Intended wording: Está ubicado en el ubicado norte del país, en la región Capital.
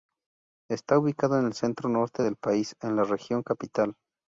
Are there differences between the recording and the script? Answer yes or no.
yes